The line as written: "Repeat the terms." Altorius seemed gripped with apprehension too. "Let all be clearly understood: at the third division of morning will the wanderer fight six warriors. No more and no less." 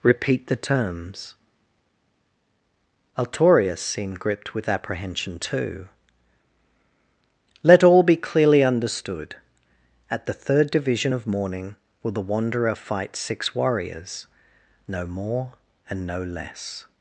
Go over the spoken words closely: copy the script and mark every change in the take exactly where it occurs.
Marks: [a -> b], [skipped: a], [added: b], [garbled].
"Repeat the terms." Altorius seemed gripped with apprehension too. "Let all be clearly understood: at the third division of morning will the wanderer fight six warriors. No more and no less."